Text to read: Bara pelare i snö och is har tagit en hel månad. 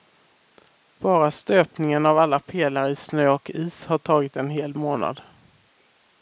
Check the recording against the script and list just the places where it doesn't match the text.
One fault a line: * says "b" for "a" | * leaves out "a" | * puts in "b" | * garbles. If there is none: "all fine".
* puts in "stöpningen av alla"